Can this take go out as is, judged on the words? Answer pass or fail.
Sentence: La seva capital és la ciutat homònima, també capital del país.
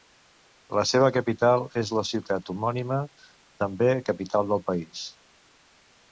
pass